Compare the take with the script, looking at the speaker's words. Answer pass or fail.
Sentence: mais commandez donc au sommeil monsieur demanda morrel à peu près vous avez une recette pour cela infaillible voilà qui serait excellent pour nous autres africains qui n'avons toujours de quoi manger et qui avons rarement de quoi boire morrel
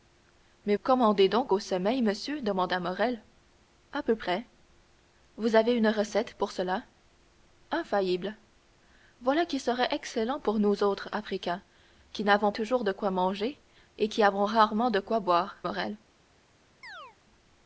pass